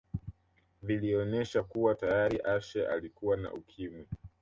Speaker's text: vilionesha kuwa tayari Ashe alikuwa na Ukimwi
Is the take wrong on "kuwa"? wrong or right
right